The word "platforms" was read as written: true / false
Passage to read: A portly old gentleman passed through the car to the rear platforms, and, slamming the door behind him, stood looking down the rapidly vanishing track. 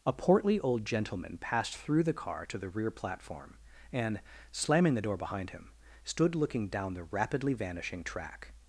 false